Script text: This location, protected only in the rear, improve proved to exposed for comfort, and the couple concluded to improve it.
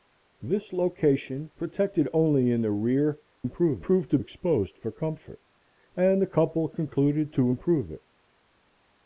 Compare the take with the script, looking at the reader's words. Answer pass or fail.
pass